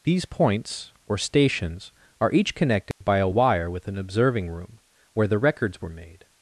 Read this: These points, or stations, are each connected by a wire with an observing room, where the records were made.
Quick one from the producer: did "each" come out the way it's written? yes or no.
yes